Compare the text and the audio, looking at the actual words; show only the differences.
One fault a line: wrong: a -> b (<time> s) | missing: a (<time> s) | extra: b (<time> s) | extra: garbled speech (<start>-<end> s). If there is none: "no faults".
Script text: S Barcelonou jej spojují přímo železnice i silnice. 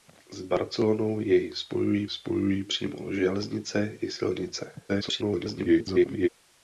extra: spojují (2.1 s)
extra: garbled speech (4.9-6.3 s)